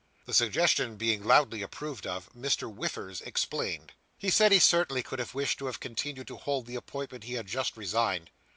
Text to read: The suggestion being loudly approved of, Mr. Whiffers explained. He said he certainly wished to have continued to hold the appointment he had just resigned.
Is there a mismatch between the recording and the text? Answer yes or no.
yes